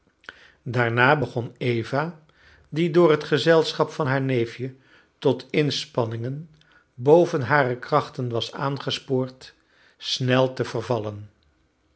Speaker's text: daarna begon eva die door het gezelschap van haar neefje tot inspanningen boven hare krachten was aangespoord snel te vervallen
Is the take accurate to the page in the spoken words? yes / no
yes